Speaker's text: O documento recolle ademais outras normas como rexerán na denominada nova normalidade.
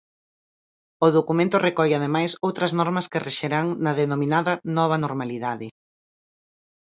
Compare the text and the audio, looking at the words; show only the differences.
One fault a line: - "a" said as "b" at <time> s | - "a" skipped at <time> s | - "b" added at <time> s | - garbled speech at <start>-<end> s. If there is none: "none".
- "como" said as "que" at 3.1 s